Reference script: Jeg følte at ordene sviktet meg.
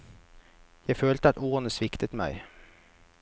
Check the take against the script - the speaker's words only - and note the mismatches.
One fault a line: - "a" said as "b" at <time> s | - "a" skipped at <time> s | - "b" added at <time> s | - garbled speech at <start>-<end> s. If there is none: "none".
none